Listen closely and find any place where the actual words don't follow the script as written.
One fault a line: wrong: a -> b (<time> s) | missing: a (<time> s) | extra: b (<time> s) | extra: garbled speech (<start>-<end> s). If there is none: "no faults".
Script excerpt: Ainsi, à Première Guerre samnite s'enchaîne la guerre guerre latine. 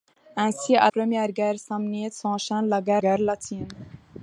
no faults